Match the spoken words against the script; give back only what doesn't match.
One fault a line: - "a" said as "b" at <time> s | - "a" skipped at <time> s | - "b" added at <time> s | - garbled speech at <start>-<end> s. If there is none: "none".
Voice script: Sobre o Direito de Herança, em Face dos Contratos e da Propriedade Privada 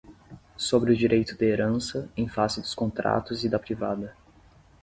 - "Propriedade" skipped at 3.6 s